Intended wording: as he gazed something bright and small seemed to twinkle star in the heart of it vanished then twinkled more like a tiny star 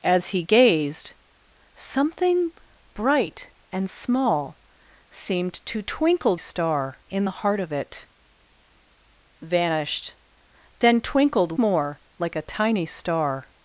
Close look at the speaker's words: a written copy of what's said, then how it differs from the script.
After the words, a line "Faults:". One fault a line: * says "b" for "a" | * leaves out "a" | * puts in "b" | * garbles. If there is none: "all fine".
as he gazed something bright and small seemed to twinkle star in the heart of it vanished then twinkled more like a tiny star
Faults:
all fine